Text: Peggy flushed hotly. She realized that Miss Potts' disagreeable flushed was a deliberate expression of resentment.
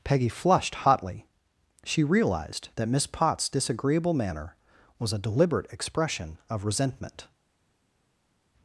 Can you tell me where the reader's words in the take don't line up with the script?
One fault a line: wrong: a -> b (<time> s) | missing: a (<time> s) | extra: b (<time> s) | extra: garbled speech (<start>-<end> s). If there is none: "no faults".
wrong: flushed -> manner (4.1 s)